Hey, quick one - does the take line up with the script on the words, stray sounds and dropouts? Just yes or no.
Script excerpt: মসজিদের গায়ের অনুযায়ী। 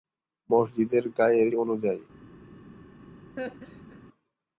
no